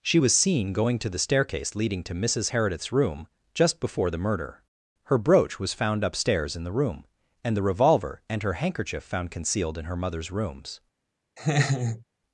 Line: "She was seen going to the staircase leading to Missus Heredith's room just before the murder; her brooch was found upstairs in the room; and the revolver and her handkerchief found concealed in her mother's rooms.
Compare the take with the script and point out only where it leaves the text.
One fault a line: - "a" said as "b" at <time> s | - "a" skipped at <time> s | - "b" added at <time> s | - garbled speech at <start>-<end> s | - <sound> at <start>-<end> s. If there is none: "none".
- laugh at 11.4-12.0 s